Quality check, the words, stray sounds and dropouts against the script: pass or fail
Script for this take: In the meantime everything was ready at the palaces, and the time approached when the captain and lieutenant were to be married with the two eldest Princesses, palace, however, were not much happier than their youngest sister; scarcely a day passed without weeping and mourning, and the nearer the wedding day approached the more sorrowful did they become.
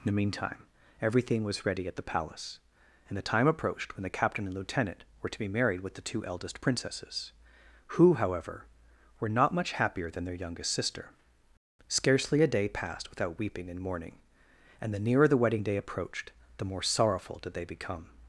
fail